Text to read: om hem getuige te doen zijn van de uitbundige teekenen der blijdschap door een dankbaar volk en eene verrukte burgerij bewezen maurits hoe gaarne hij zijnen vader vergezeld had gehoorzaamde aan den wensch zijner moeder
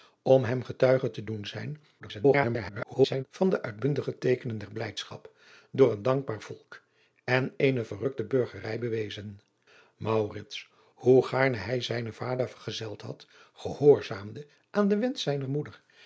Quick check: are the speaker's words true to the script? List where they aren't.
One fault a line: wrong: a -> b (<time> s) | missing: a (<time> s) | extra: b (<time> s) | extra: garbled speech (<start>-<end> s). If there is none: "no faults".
extra: garbled speech (2.0-3.2 s)